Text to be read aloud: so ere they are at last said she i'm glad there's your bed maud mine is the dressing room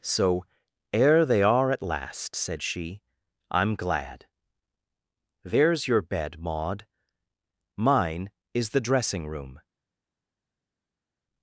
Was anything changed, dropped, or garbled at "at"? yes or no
no